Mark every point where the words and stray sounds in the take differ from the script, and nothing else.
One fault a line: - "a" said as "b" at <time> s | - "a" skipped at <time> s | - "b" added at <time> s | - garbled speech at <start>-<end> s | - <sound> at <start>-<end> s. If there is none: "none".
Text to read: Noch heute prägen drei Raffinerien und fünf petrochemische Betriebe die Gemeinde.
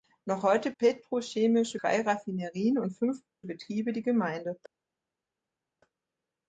- "prägen" said as "petrochemische" at 0.8 s
- "petrochemische" skipped at 3.2 s